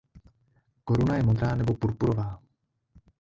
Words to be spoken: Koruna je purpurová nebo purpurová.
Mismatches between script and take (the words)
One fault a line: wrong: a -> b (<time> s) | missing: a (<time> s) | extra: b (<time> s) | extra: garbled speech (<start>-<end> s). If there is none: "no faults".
wrong: purpurová -> modrá (1.2 s)